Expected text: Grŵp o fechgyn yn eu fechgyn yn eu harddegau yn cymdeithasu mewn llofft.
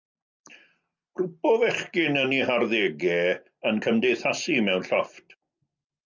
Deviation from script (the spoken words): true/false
true